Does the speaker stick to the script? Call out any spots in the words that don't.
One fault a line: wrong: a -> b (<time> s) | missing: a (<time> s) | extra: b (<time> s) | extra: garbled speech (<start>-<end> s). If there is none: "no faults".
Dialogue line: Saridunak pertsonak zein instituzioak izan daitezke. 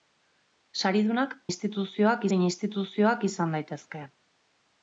wrong: pertsonak -> instituzioak (1.5 s)